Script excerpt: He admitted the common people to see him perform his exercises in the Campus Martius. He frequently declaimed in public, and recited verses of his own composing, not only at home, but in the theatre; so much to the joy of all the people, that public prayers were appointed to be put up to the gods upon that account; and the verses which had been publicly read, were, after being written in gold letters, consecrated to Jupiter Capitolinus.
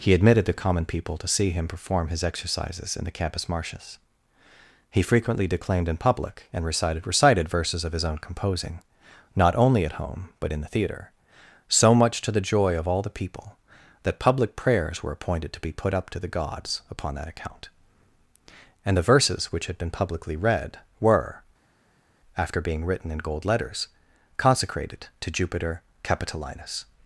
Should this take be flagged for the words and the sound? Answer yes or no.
yes